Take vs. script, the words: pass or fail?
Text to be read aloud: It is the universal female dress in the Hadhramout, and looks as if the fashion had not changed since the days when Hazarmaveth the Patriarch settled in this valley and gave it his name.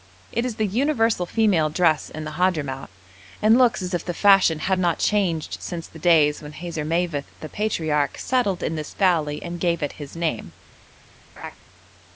pass